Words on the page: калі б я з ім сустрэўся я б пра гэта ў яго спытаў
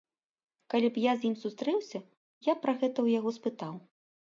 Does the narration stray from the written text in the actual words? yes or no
no